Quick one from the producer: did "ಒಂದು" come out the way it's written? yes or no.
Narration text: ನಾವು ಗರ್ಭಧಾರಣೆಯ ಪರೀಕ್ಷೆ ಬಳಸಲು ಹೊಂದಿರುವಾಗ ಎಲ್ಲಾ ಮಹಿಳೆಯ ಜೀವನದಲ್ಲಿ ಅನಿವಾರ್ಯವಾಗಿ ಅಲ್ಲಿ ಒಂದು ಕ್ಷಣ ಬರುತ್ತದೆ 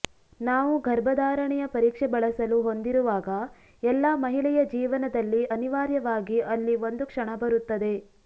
yes